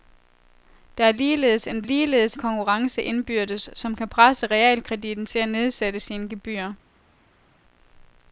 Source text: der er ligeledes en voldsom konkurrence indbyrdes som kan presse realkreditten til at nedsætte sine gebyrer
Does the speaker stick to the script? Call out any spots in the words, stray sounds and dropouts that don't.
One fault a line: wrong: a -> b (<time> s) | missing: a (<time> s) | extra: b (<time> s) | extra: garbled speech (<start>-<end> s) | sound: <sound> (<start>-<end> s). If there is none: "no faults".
wrong: voldsom -> ligeledes (1.8 s)